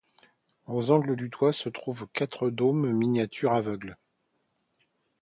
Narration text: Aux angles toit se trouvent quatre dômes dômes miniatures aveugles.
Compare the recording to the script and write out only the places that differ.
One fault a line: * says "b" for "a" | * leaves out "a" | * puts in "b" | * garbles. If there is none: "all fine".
* puts in "du"
* leaves out "dômes"